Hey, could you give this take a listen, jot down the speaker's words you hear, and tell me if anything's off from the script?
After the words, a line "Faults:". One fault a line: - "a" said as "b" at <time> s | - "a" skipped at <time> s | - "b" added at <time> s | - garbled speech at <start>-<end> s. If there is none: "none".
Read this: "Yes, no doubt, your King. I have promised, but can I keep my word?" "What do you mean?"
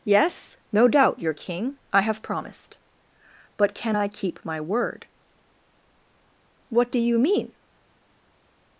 "Yes, no doubt, your King. I have promised, but can I keep my word?" "What do you mean?"
Faults:
none